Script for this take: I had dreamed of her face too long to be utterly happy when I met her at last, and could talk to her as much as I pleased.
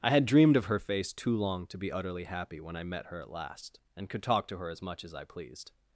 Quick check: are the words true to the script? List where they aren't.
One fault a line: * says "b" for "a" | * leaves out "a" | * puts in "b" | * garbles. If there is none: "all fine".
all fine